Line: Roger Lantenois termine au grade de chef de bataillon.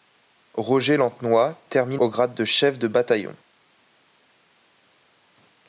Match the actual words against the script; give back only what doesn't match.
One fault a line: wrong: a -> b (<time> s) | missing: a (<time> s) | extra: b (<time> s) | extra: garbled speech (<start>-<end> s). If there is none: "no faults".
no faults